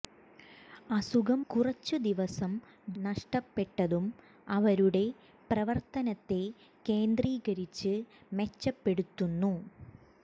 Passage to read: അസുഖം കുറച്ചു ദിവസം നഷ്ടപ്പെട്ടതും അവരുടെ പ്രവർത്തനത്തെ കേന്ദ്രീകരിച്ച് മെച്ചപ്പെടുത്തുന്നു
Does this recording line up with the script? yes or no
yes